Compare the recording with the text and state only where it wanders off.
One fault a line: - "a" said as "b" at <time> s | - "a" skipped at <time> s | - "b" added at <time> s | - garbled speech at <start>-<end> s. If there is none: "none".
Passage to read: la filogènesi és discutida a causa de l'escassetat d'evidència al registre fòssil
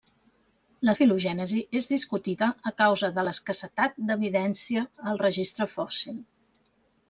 none